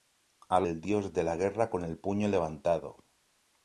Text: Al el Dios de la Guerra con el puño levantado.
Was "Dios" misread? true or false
false